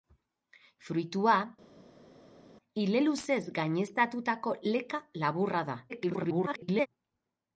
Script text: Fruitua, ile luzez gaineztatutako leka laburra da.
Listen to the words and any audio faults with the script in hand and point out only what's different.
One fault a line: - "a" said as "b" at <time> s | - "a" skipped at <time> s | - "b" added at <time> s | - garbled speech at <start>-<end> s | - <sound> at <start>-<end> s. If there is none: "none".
- garbled speech at 5.9-6.9 s